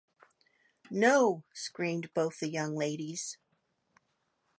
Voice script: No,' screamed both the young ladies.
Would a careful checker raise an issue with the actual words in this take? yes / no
no